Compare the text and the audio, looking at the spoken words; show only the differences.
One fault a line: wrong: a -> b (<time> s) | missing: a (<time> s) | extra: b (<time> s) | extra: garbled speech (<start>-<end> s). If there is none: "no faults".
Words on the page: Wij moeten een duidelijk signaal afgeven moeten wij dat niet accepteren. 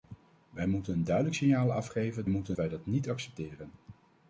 no faults